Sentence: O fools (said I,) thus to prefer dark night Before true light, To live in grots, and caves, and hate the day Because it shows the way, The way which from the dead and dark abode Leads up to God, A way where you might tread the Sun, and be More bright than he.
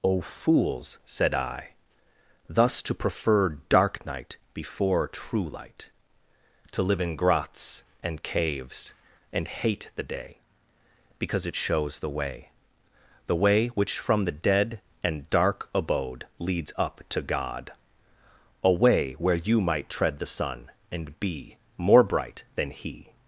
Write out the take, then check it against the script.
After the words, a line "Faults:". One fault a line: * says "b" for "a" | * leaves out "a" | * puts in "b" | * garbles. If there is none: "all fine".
O fools (said I,) thus to prefer dark night Before true light, To live in grots, and caves, and hate the day Because it shows the way, The way which from the dead and dark abode Leads up to God, A way where you might tread the Sun, and be More bright than he.
Faults:
all fine